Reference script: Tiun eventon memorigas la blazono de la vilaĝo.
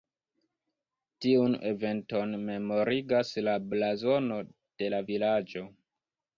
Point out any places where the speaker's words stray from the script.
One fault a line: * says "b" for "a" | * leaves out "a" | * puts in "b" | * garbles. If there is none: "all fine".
all fine